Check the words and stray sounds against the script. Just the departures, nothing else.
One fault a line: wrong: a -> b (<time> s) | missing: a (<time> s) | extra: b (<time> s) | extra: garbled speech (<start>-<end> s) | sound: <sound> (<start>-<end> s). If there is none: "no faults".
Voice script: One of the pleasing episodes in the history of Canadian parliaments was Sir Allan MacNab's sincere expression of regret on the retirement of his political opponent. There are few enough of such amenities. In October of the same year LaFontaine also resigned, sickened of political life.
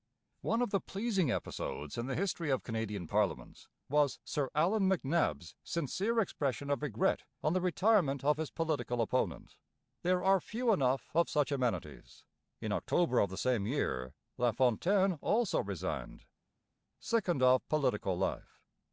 no faults